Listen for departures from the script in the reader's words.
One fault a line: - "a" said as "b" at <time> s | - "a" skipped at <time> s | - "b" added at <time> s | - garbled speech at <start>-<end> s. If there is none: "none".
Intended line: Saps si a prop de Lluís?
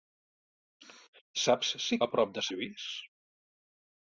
none